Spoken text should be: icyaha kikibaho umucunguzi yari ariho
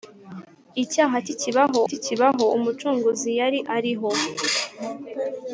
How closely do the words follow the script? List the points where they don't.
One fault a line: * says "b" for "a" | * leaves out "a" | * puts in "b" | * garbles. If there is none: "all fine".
* puts in "kikibaho"